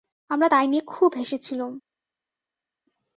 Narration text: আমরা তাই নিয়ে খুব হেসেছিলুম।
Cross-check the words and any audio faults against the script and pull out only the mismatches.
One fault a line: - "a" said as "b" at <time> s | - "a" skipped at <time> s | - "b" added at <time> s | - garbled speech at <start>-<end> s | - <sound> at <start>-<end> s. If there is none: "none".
none